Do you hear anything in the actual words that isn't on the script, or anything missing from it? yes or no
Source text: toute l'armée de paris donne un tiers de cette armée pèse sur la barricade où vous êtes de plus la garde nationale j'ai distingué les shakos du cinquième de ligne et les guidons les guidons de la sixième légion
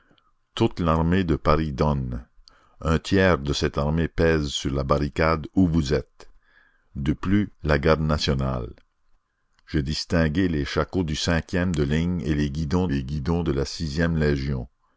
no